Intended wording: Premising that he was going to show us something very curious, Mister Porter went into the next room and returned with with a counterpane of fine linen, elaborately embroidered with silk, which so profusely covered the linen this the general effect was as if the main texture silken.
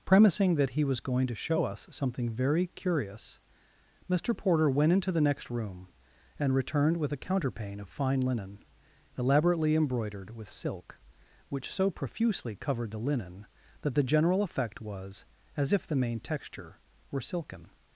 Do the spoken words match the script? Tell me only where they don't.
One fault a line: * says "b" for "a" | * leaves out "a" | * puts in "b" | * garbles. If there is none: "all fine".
* leaves out "with"
* says "that" for "this"
* puts in "were"